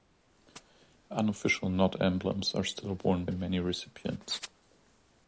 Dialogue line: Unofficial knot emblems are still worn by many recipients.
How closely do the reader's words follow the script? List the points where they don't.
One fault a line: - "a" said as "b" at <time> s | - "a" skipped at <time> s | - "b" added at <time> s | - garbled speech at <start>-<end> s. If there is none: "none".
- "by" skipped at 3.2 s